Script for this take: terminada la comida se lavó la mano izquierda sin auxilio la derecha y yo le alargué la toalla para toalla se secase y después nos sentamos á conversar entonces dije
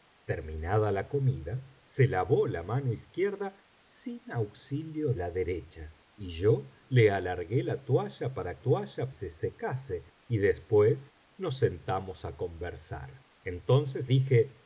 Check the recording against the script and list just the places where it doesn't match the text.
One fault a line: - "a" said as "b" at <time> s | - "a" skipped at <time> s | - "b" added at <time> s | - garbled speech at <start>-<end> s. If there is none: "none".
none